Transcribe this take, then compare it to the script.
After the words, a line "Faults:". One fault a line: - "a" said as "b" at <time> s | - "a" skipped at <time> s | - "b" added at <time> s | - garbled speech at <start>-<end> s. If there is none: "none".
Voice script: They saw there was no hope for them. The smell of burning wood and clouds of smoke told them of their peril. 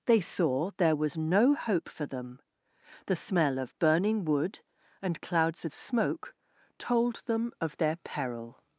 They saw there was no hope for them. The smell of burning wood and clouds of smoke told them of their peril.
Faults:
none